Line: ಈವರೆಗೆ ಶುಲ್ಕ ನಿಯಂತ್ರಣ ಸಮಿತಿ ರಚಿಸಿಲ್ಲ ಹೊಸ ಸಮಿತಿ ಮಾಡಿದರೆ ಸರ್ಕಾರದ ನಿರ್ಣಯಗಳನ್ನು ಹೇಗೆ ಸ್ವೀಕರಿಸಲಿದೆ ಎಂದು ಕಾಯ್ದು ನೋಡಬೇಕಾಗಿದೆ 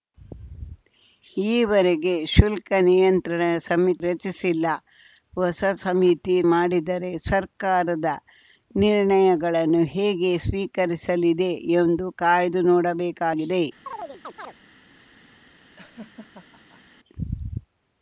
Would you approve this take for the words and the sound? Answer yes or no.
no